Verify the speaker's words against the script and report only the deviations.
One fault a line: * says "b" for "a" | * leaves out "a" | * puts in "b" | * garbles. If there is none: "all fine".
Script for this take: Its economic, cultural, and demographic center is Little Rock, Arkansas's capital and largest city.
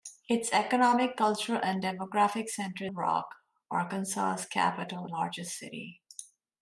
* leaves out "is Little"
* leaves out "and"